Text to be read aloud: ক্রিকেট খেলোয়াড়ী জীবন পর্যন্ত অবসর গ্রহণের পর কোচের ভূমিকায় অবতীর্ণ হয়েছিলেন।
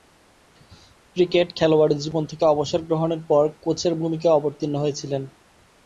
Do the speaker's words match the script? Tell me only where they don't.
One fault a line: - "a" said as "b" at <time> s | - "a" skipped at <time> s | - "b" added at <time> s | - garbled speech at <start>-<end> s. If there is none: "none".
- "পর্যন্ত" said as "থেকে" at 2.2 s